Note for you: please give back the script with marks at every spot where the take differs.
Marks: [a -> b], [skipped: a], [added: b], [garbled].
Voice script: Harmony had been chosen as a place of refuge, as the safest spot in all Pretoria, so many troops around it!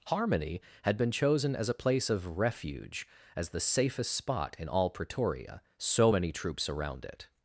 Harmony had been chosen as a place of refuge, as the safest spot in all Pretoria, so many troops around it!